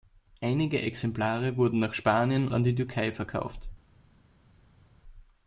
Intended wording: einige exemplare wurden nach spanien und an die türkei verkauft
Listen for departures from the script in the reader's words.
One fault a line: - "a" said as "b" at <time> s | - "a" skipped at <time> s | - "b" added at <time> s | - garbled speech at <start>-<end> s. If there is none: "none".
- "und" skipped at 2.5 s